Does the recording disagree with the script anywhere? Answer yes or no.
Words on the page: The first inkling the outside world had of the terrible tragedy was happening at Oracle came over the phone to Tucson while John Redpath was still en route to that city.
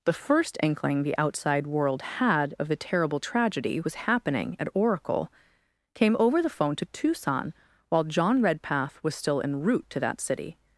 no